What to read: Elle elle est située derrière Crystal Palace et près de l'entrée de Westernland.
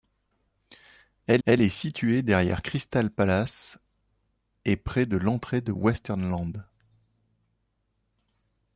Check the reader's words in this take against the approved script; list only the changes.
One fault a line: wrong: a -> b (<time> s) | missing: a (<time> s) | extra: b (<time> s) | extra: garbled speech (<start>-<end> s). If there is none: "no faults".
no faults